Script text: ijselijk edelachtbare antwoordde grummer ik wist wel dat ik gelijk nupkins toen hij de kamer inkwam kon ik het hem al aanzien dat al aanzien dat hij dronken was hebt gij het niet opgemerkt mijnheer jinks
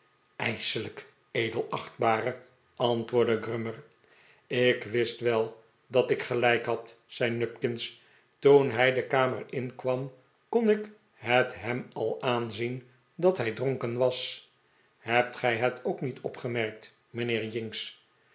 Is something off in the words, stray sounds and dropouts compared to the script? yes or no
yes